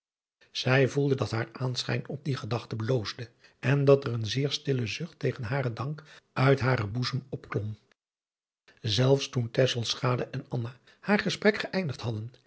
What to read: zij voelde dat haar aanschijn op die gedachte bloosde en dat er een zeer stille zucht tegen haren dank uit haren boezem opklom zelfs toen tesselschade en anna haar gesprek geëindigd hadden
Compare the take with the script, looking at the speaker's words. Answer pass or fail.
pass